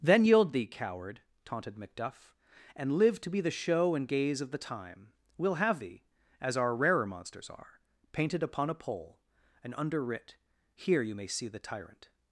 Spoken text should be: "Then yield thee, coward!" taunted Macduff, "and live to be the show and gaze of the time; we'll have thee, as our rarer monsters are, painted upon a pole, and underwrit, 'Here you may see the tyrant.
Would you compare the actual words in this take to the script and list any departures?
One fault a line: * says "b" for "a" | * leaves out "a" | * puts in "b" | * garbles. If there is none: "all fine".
all fine